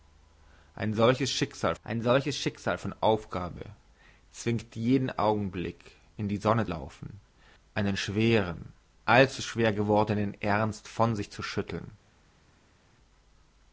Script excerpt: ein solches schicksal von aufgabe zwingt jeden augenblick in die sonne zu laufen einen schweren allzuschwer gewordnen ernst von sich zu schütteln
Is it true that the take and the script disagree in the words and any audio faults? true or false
true